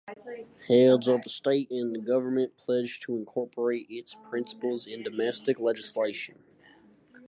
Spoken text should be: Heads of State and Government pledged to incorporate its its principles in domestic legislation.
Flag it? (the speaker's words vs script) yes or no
yes